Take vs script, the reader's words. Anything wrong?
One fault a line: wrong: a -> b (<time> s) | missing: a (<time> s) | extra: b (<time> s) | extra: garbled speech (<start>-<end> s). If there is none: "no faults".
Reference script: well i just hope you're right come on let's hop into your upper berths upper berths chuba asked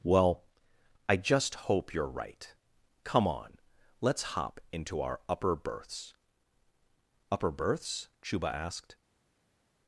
wrong: your -> our (5.0 s)